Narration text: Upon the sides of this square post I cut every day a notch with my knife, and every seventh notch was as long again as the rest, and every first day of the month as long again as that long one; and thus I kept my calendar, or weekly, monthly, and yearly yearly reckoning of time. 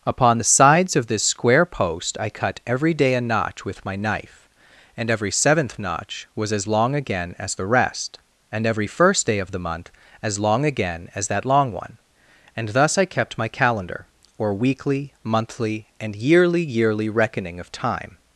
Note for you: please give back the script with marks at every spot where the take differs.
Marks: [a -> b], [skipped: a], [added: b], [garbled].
Upon the sides of this square post I cut every day a notch with my knife, and every seventh notch was as long again as the rest, and every first day of the month as long again as that long one; and thus I kept my calendar, or weekly, monthly, and yearly yearly reckoning of time.